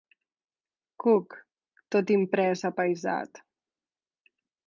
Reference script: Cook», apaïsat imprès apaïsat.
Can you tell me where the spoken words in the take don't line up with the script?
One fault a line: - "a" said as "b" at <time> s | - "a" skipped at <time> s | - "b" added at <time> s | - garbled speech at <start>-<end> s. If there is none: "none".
- "apaïsat" said as "tot" at 1.9 s